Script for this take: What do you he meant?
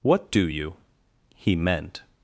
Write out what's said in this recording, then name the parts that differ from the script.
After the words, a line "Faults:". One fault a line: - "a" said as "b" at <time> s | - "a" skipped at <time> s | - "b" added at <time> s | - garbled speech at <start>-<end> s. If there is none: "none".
What do you he meant?
Faults:
none